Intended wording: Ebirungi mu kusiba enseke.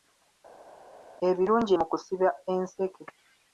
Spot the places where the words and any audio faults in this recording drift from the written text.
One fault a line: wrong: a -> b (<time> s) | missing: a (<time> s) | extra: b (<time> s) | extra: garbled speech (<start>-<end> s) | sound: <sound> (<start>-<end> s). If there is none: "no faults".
no faults